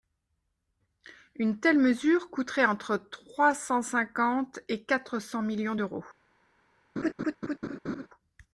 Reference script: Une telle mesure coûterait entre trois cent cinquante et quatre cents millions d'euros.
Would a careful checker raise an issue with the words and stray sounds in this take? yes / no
yes